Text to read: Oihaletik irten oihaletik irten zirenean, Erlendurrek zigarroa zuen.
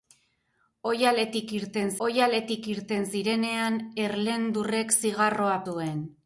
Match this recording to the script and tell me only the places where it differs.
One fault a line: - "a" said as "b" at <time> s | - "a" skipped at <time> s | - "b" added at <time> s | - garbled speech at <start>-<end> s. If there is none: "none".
none